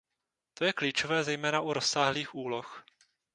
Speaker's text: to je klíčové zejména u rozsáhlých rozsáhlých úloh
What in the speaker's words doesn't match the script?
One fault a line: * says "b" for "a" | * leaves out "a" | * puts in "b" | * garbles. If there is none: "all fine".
* leaves out "rozsáhlých"